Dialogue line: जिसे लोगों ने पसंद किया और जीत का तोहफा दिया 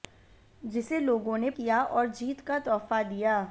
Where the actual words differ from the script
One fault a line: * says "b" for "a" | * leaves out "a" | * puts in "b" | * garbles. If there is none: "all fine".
* leaves out "पसंद"